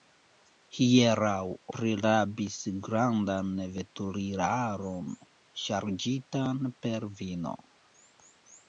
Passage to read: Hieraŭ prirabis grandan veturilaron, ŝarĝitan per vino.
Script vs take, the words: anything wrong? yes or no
no